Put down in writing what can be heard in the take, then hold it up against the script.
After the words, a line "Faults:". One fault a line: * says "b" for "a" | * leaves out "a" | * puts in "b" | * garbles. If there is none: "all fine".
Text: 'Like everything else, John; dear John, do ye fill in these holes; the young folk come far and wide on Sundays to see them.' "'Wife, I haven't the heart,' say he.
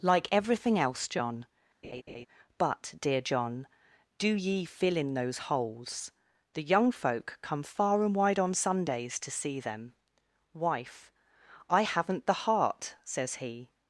'Like everything else, John; but, dear John, do ye fill in those holes; the young folk come far and wide on Sundays to see them.' "'Wife, I haven't the heart,' says he.
Faults:
* puts in "but"
* says "those" for "these"
* says "says" for "say"